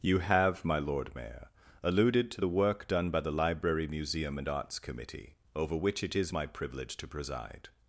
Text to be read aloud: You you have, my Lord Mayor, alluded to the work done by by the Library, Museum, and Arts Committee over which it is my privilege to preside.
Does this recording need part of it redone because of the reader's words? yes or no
yes